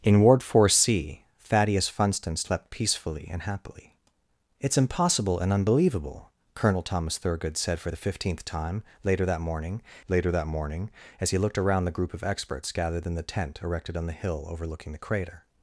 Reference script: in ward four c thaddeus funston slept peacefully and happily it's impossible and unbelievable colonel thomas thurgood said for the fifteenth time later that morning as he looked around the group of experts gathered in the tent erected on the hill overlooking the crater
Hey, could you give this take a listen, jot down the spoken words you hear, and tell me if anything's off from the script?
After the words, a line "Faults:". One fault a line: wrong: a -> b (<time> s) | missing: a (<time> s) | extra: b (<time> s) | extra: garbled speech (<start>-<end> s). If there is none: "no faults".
in ward four c thaddeus funston slept peacefully and happily it's impossible and unbelievable colonel thomas thurgood said for the fifteenth time later that morning later that morning as he looked around the group of experts gathered in the tent erected on the hill overlooking the crater
Faults:
extra: later that morning (10.1 s)